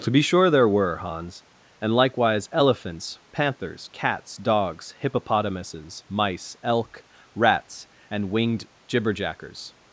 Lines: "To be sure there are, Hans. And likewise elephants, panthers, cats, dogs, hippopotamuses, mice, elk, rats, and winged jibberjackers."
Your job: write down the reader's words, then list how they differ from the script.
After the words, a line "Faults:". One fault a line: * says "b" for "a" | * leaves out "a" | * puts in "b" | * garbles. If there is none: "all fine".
"To be sure there were, Hans. And likewise elephants, panthers, cats, dogs, hippopotamuses, mice, elk, rats, and winged jibberjackers."
Faults:
* says "were" for "are"